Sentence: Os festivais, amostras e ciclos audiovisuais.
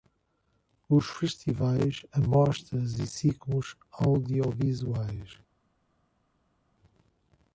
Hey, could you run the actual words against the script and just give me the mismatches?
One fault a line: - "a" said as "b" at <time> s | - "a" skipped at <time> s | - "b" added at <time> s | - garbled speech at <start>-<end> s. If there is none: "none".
none